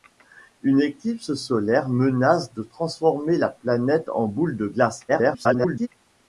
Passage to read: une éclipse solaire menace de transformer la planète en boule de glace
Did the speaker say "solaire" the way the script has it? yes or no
yes